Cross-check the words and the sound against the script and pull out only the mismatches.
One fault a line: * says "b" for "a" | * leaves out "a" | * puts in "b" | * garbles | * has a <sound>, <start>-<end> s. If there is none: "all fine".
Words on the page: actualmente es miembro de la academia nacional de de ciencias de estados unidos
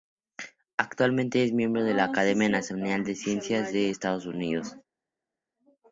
* leaves out "de"